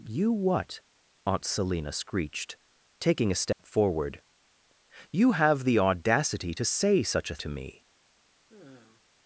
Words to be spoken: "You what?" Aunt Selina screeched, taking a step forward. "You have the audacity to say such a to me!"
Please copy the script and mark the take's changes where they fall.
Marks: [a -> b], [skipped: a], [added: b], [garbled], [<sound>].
"You what?" Aunt Selina screeched, taking a step [dropout] forward. "You have the audacity to say such a to me!" [sigh]